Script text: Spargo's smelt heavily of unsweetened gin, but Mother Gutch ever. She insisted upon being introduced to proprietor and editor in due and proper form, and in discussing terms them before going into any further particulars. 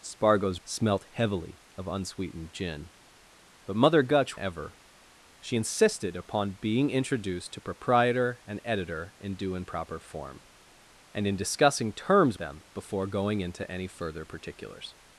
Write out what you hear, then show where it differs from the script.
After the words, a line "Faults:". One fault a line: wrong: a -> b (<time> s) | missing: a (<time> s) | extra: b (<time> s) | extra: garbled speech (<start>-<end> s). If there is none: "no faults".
Spargo's smelt heavily of unsweetened gin, but Mother Gutch ever. She insisted upon being introduced to proprietor and editor in due and proper form, and in discussing terms them before going into any further particulars.
Faults:
no faults